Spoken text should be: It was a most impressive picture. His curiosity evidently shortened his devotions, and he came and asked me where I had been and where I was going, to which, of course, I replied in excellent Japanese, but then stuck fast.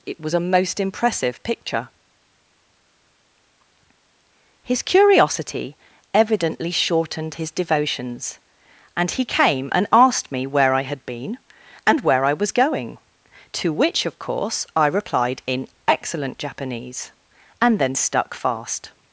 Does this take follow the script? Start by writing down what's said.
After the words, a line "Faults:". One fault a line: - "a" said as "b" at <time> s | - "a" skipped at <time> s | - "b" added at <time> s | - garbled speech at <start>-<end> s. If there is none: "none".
It was a most impressive picture. His curiosity evidently shortened his devotions, and he came and asked me where I had been and where I was going, to which, of course, I replied in excellent Japanese, and then stuck fast.
Faults:
- "but" said as "and" at 17.6 s